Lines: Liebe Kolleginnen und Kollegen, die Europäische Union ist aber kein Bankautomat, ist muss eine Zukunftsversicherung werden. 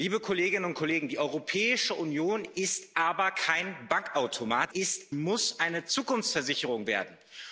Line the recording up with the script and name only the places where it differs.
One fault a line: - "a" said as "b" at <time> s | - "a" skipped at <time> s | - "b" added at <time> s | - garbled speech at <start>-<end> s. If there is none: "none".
none